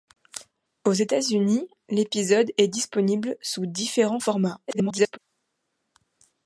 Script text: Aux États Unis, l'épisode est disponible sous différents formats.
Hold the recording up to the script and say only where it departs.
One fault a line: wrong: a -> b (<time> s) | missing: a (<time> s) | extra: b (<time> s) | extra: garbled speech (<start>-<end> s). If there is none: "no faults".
extra: garbled speech (4.7-5.2 s)